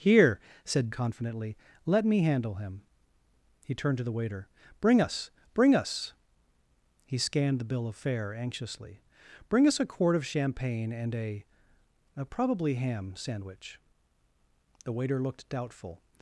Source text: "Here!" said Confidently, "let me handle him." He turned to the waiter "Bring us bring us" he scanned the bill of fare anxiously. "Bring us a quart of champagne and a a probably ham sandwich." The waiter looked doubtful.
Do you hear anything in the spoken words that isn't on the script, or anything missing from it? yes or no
no